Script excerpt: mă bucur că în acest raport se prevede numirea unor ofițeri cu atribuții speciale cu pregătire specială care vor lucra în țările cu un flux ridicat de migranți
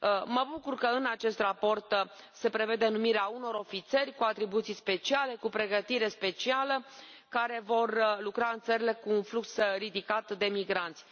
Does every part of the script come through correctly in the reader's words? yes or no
yes